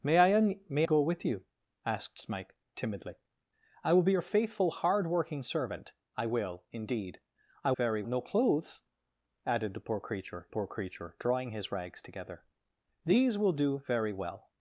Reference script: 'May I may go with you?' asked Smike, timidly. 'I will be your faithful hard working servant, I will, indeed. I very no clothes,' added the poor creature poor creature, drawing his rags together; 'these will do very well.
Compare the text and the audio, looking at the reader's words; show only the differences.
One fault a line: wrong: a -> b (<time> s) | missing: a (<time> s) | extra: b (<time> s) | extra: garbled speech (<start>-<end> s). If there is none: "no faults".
no faults